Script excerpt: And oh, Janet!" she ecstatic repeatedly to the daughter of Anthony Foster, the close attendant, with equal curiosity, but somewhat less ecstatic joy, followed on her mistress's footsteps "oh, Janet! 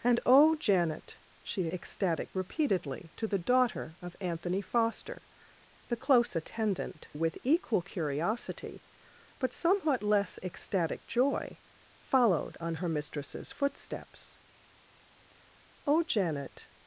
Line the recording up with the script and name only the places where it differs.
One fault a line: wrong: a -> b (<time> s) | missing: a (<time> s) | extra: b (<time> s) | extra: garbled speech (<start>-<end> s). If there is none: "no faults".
no faults